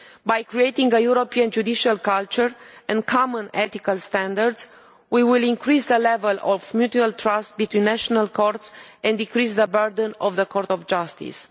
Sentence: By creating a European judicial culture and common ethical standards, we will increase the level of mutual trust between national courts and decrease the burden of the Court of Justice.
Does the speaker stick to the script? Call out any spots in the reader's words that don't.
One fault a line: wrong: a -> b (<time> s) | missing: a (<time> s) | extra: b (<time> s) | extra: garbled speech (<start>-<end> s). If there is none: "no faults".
no faults